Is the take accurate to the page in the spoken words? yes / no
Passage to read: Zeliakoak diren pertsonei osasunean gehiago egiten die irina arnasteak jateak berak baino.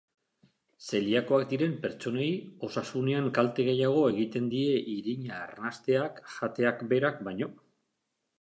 no